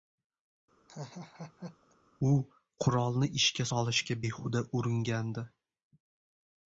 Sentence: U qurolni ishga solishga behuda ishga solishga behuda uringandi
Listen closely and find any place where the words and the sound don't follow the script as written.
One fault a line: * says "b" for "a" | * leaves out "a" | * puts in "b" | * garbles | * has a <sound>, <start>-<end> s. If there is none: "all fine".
* has a laugh, 0.9-2.0 s
* leaves out "ishga solishga behuda"